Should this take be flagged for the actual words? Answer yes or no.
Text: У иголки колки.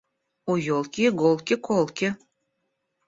yes